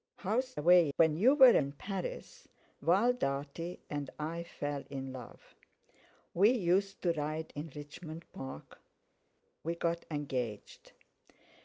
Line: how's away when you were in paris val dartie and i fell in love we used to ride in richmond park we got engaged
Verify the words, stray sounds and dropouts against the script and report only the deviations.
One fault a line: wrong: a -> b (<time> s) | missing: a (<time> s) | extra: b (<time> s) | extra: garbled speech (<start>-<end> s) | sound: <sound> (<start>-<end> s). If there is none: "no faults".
no faults